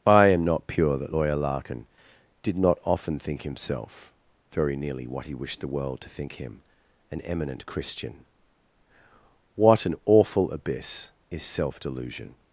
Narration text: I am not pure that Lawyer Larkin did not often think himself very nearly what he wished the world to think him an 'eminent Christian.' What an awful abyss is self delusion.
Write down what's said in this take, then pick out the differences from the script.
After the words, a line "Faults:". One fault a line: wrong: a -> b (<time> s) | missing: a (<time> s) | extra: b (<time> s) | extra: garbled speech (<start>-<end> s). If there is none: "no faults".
I am not pure that Lawyer Larkin did not often think himself very nearly what he wished the world to think him an 'eminent Christian.' What an awful abyss is self delusion.
Faults:
no faults